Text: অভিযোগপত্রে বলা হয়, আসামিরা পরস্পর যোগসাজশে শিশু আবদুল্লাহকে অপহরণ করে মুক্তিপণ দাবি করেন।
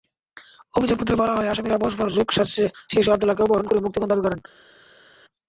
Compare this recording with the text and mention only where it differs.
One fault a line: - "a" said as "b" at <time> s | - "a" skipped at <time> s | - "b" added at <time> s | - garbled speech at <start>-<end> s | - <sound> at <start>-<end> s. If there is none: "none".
none